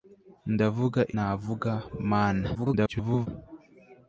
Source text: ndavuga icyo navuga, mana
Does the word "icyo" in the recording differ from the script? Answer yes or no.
yes